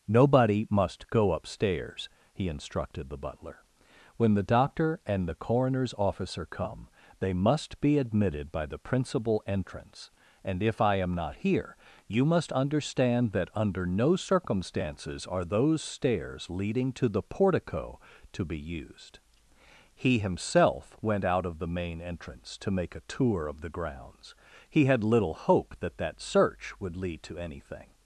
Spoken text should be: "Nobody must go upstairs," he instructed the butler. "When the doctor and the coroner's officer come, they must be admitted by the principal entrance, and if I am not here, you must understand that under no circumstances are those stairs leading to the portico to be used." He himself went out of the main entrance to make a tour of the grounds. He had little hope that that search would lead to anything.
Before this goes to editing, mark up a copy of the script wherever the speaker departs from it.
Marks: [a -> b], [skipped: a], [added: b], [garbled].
"Nobody must go upstairs," he instructed the butler. "When the doctor and the coroner's officer come, they must be admitted by the principal entrance, and if I am not here, you must understand that under no circumstances are those stairs leading to the portico to be used." He himself went out of the main entrance to make a tour of the grounds. He had little hope that that search would lead to anything.